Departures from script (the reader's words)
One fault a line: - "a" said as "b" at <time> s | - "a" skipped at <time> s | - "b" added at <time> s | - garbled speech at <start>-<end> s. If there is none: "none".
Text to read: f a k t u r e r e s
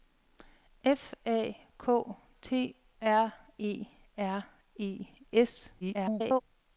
- "u" skipped at 2.8 s
- garbled speech at 5.8-6.4 s